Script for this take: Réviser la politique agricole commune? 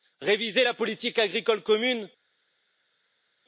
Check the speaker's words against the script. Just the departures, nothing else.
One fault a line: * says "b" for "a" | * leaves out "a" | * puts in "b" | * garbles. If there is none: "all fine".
all fine